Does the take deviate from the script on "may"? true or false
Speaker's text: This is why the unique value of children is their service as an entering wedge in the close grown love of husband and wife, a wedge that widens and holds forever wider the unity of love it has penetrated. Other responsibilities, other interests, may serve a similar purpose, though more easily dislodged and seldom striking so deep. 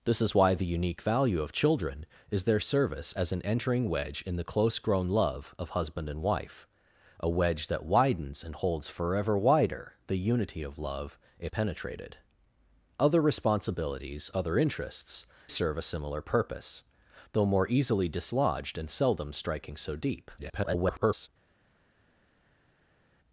true